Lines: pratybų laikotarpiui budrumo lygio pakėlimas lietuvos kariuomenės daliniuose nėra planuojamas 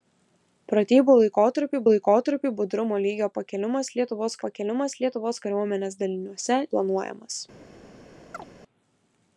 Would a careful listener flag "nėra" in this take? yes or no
yes